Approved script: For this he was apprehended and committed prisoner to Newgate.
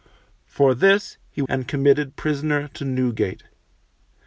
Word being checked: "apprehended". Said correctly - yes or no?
no